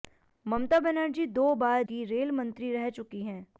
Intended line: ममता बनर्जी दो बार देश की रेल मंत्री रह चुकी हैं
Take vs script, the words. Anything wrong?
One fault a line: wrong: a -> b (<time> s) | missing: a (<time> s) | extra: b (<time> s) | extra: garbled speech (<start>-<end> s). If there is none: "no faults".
missing: देश (1.8 s)